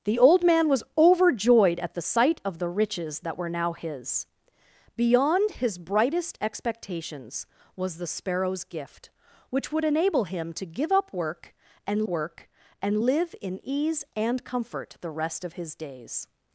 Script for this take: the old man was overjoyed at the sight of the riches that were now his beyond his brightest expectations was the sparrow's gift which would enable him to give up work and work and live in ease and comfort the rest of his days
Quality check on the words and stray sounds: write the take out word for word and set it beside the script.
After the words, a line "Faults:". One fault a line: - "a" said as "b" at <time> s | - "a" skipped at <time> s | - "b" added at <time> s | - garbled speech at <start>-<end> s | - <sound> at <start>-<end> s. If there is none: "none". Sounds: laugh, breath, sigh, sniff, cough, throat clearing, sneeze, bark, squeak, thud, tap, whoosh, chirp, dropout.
the old man was overjoyed at the sight of the riches that were now his beyond his brightest expectations was the sparrow's gift which would enable him to give up work and work and live in ease and comfort the rest of his days
Faults:
none